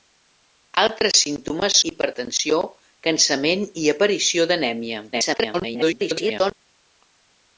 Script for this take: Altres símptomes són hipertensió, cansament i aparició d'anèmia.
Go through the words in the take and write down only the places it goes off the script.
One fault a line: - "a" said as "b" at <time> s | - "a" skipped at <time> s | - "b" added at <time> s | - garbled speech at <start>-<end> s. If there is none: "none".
- "són" skipped at 1.8 s
- garbled speech at 5.1-6.5 s